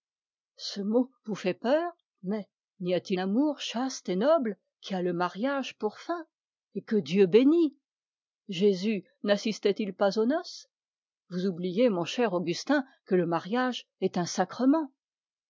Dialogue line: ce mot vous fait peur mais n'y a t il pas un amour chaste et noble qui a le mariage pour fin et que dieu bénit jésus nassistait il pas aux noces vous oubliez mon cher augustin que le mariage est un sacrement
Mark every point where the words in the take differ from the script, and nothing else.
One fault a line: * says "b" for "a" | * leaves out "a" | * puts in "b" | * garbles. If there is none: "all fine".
* leaves out "il pas un"